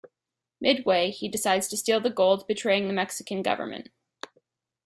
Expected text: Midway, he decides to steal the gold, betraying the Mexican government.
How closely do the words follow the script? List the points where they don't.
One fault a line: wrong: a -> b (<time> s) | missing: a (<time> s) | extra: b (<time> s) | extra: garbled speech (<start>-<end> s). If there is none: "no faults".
no faults